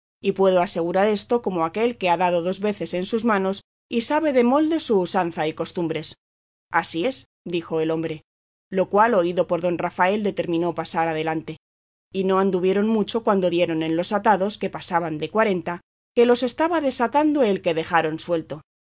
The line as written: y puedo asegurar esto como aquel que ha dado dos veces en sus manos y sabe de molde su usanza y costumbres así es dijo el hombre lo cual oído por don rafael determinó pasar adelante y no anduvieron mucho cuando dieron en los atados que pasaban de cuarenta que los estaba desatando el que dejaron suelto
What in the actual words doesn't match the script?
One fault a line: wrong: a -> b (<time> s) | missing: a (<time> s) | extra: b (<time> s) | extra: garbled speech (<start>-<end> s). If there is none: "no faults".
no faults